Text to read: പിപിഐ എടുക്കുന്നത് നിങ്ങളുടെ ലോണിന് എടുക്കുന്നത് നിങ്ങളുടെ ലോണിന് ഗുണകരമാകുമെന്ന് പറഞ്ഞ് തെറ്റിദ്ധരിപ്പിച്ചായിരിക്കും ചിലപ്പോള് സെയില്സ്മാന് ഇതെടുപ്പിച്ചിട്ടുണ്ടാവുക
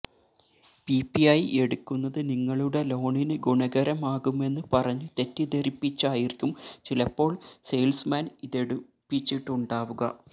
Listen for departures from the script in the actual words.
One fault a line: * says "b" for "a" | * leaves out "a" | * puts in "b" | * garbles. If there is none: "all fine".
* leaves out "എടുക്കുന്നത് നിങ്ങളുടെ ലോണിന്"